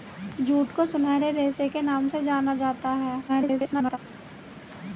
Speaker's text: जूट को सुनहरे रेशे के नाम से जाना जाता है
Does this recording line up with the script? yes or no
no